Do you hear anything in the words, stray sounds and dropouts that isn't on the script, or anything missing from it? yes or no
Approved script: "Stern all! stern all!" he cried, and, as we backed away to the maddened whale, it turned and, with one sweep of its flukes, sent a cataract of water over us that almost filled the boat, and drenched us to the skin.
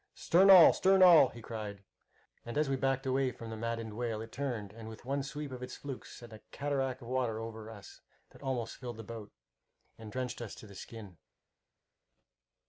yes